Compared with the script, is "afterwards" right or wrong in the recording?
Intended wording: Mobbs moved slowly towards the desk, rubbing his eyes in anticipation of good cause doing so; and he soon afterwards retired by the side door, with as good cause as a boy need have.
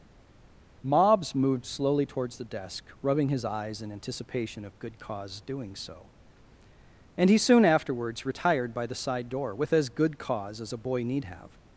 right